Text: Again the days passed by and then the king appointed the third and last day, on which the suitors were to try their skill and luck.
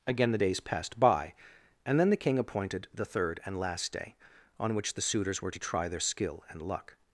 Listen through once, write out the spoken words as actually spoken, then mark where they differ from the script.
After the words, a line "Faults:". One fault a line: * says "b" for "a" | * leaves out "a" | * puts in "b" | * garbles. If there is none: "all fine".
Again the days passed by and then the king appointed the third and last day, on which the suitors were to try their skill and luck.
Faults:
all fine